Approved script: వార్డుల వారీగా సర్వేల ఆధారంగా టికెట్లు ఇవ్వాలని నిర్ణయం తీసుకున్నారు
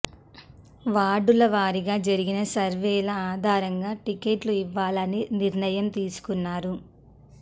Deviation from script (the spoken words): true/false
true